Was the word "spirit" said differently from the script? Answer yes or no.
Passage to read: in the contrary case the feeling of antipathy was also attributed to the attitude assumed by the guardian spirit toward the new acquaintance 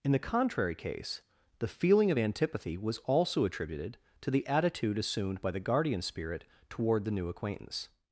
no